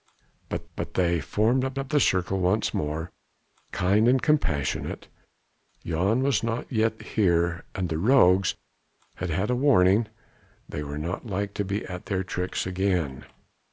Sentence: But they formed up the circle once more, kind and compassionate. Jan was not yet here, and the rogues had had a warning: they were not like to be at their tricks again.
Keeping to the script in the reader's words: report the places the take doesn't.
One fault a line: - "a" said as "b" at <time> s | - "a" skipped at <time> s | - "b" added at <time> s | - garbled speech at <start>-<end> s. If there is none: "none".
- "but" added at 0.8 s
- "up" added at 1.8 s